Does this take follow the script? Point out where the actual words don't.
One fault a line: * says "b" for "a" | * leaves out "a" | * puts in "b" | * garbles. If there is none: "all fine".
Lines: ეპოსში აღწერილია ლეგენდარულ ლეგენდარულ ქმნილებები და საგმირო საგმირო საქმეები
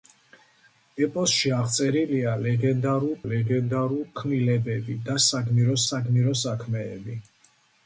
all fine